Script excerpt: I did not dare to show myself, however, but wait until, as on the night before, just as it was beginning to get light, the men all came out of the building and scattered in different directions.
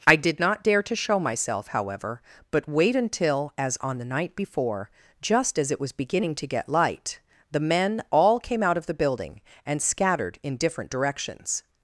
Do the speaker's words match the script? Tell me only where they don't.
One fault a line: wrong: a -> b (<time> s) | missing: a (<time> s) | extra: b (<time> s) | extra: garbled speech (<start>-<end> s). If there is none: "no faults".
no faults